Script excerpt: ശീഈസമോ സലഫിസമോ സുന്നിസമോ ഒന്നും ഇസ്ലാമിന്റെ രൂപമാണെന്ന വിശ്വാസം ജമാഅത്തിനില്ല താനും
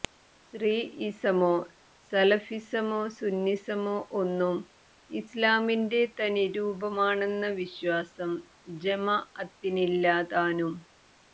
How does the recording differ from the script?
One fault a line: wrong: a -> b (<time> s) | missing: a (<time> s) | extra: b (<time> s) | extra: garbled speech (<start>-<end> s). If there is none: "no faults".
extra: തനി (6.2 s)